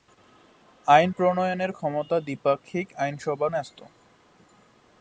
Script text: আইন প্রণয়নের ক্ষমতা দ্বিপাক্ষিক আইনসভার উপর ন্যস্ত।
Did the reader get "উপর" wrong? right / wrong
wrong